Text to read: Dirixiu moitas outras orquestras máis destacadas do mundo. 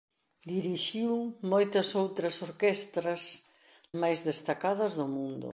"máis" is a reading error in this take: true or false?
false